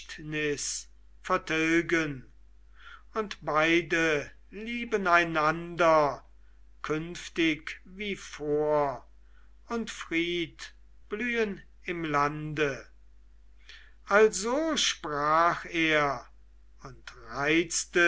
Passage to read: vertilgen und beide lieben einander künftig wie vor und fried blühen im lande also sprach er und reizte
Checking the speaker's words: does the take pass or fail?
pass